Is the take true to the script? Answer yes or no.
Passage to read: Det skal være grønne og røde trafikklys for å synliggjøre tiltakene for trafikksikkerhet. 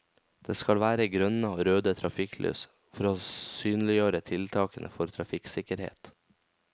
yes